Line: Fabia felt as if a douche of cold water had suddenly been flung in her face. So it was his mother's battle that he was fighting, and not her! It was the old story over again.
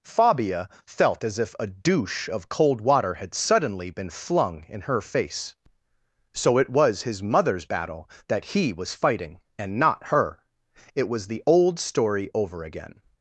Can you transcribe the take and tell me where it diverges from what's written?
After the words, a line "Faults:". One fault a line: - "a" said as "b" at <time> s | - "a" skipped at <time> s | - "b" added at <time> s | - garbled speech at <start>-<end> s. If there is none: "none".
Fabia felt as if a douche of cold water had suddenly been flung in her face. So it was his mother's battle that he was fighting, and not her! It was the old story over again.
Faults:
none